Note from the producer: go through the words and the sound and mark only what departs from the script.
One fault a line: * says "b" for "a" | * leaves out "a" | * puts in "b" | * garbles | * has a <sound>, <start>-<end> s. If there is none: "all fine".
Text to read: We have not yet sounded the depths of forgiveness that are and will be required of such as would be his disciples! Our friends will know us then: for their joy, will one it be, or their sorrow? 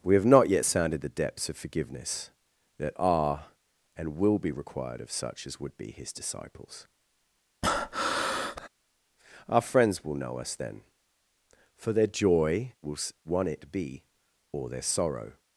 * has a breath, 7.6-8.7 s